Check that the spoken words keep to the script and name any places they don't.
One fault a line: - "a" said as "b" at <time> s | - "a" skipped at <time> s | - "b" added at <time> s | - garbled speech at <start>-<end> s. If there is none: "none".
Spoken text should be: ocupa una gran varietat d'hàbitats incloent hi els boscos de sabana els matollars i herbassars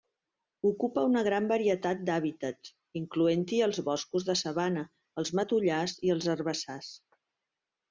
- "els" added at 6.2 s